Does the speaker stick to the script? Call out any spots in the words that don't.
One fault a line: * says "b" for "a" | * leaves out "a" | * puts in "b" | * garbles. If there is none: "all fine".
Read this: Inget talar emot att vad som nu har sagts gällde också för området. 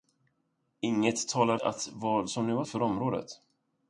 * leaves out "emot"
* leaves out "sagts gällde också"